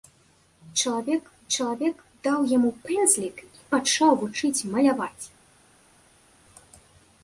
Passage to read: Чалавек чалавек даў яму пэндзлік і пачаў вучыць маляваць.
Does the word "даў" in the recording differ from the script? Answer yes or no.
no